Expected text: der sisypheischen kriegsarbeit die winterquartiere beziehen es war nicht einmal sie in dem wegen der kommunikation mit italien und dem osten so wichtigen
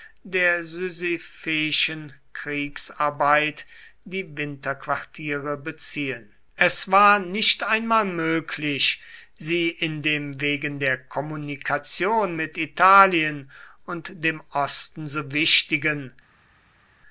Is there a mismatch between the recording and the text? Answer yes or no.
yes